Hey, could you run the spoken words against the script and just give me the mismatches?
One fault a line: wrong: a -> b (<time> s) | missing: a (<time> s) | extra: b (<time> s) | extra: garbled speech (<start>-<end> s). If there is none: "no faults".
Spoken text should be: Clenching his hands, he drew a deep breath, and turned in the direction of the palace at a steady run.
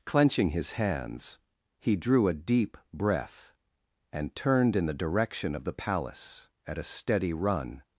no faults